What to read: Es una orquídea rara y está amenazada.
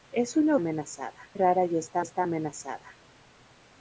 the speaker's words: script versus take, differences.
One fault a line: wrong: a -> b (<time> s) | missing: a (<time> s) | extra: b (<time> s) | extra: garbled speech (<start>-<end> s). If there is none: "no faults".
wrong: orquídea -> amenazada (0.6 s)
extra: está (2.0 s)